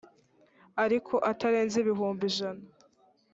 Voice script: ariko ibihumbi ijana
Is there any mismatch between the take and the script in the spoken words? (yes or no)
yes